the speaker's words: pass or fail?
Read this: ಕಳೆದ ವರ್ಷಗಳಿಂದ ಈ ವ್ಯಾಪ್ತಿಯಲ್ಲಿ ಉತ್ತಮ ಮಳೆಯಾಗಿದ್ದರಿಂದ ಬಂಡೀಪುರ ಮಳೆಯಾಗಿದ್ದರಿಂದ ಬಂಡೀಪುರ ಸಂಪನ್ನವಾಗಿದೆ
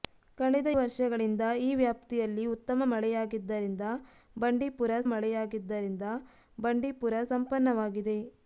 pass